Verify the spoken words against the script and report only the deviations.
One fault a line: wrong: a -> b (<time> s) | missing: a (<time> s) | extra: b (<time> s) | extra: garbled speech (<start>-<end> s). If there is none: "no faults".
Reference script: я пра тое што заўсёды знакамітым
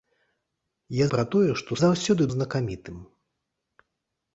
no faults